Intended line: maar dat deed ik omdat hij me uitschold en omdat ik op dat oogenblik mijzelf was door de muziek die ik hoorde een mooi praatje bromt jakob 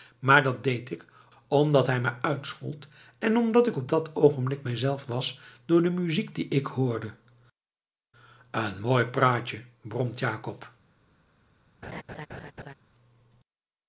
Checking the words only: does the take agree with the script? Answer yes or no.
yes